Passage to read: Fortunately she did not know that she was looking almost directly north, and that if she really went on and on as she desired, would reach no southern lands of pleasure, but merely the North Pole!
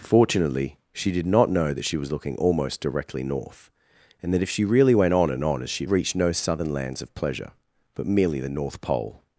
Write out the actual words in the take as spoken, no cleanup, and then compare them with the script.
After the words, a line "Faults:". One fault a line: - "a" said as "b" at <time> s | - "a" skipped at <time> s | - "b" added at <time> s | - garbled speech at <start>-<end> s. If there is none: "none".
Fortunately she did not know that she was looking almost directly north, and that if she really went on and on as she reach no southern lands of pleasure, but merely the North Pole!
Faults:
- "desired would" skipped at 5.8 s